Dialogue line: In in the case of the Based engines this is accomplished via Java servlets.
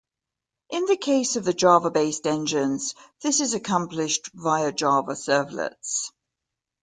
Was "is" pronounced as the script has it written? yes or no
yes